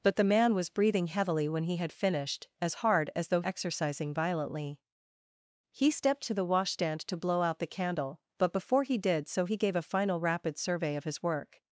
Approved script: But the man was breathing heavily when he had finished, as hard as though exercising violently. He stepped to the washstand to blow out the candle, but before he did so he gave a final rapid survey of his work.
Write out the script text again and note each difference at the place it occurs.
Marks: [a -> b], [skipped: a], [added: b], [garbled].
But the man was breathing heavily when he had finished, as hard as though exercising violently. He stepped to the washstand to blow out the candle, but before he did so he gave a final rapid survey of his work.